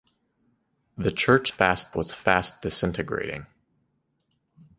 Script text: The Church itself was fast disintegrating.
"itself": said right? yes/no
no